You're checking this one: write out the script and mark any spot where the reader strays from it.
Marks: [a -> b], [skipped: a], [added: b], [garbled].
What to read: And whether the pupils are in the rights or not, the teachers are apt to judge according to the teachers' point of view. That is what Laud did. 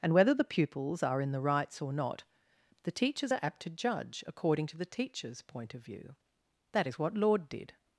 And whether the pupils are in the rights or not, the teachers are apt to judge according to the teachers' point of view. That is what Laud did.